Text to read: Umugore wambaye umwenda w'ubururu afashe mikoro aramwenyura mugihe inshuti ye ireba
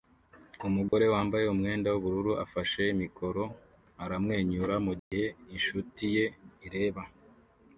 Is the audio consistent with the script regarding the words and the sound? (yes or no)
no